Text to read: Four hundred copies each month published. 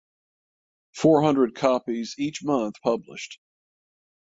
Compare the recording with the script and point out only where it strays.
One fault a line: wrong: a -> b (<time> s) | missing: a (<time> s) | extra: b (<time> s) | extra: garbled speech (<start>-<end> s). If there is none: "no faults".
no faults